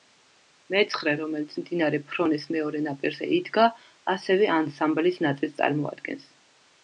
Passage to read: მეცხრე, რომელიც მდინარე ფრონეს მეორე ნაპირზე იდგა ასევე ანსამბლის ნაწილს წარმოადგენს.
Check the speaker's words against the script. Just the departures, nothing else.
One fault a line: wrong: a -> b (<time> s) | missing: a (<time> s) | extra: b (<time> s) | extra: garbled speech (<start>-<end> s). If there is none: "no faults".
no faults